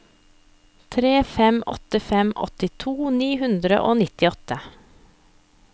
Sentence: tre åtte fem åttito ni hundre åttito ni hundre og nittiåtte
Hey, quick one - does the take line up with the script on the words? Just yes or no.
no